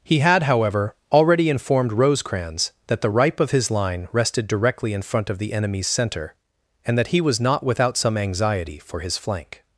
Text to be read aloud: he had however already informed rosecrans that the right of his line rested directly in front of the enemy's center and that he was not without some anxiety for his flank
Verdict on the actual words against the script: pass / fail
fail